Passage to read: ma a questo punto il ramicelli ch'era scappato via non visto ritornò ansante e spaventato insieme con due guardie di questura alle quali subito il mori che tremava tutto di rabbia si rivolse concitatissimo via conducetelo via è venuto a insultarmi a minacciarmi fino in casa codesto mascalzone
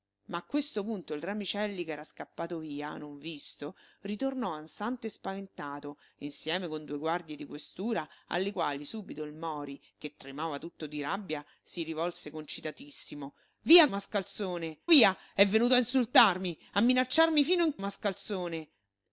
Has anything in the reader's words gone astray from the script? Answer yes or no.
yes